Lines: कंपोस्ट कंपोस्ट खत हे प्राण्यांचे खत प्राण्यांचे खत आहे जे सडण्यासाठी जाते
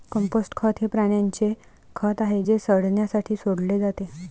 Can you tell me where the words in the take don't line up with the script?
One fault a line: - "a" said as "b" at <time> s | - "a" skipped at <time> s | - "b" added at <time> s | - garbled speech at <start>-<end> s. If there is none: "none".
- "कंपोस्ट" skipped at 0.5 s
- "प्राण्यांचे खत" skipped at 2.2 s
- "सोडले" added at 3.3 s